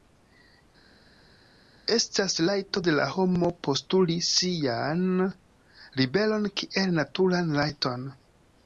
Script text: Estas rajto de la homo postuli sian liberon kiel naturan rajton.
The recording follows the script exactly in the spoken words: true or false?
true